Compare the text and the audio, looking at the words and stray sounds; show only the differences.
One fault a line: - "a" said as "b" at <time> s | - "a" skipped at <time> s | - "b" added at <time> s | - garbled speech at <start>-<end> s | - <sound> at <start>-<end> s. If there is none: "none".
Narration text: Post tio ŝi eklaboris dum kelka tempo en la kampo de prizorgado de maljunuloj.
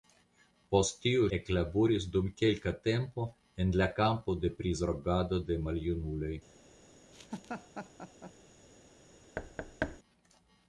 - "ŝi" skipped at 1.2 s
- laugh at 7.1-8.3 s
- thud at 9.4-10.0 s